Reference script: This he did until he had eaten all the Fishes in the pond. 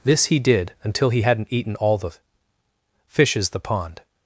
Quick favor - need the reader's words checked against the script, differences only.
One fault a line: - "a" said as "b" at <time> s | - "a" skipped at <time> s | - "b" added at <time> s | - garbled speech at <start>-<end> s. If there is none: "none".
- "had" said as "hadn't" at 1.2 s
- "in" skipped at 3.5 s